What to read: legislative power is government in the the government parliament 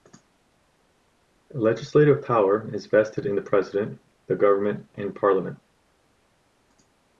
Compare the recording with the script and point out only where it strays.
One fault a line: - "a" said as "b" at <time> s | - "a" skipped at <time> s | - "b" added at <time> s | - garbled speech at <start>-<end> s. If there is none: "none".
- "government" said as "vested" at 2.9 s
- "president" added at 3.4 s
- "and" added at 4.9 s